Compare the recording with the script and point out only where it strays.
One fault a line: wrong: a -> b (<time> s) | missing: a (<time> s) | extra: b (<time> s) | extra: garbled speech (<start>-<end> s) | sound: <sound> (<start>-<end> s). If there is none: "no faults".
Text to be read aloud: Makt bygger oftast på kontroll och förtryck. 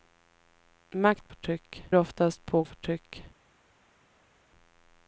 wrong: bygger -> förtryck (1.3 s)
missing: kontroll (2.6 s)